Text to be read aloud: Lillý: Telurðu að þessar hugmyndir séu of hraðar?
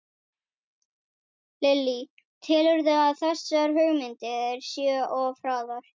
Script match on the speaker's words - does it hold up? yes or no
yes